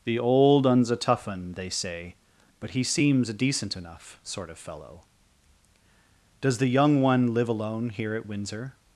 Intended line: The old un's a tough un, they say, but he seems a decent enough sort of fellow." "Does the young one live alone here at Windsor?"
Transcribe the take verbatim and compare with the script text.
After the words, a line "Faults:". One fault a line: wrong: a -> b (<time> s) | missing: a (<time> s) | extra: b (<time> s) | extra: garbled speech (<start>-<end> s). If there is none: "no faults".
The old un's a tough un, they say, but he seems a decent enough sort of fellow." "Does the young one live alone here at Windsor?"
Faults:
no faults